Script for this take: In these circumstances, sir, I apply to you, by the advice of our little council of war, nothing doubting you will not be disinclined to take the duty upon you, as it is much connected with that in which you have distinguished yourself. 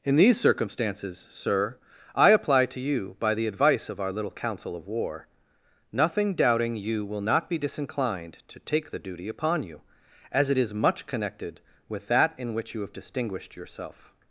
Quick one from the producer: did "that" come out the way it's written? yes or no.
yes